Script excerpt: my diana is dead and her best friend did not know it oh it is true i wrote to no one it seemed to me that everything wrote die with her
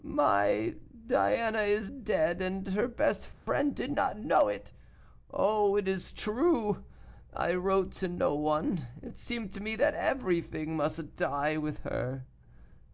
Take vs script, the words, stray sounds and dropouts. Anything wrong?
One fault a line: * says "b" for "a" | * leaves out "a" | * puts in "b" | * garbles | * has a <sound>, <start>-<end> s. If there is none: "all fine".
* has a dropout, 3.3-3.5 s
* says "must" for "wrote"